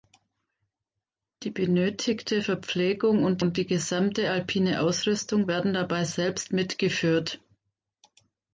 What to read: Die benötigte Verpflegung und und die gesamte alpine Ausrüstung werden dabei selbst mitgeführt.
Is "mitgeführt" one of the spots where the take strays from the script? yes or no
no